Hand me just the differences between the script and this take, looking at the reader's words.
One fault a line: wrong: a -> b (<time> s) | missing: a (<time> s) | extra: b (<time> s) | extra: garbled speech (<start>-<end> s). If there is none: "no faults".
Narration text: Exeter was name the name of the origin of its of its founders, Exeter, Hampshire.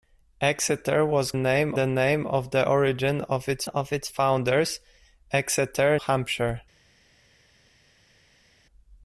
no faults